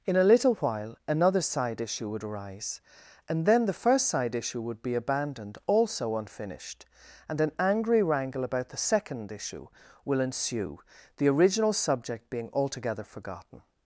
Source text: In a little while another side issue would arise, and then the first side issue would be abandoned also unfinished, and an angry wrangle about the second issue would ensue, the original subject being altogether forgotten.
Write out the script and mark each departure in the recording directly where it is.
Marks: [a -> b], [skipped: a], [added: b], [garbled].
In a little while another side issue would arise, and then the first side issue would be abandoned also unfinished, and an angry wrangle about the second issue [would -> will] ensue, the original subject being altogether forgotten.